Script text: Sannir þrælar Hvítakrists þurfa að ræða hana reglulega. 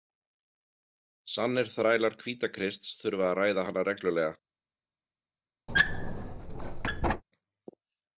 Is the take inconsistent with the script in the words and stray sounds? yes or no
yes